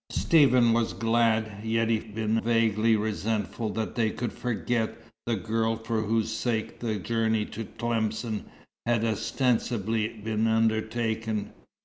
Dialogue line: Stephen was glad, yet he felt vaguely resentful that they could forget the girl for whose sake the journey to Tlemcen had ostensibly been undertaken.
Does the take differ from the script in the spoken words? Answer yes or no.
yes